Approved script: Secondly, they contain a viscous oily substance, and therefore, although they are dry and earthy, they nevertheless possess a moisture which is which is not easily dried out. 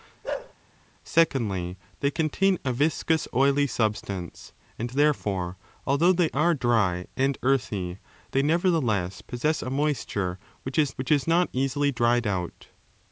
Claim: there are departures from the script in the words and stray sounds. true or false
true